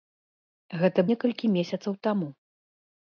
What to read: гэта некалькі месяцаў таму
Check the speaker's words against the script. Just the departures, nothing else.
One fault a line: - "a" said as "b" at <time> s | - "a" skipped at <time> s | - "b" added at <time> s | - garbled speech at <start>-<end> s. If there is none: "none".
none